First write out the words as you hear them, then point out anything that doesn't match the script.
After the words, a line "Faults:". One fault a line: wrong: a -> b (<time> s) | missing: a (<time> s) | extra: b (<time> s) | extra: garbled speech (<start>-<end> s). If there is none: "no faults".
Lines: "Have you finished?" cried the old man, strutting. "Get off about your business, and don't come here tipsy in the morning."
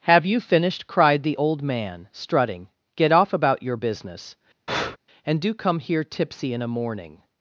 "Have you finished?" cried the old man, strutting. "Get off about your business, and do come here tipsy in a morning."
Faults:
wrong: don't -> do (5.4 s)
wrong: the -> a (6.6 s)